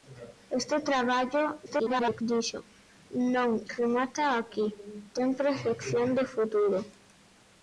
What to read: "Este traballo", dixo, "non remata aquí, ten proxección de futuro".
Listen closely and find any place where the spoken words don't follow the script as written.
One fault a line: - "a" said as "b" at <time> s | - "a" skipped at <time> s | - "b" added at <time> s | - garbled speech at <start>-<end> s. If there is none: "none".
- garbled speech at 1.7-2.2 s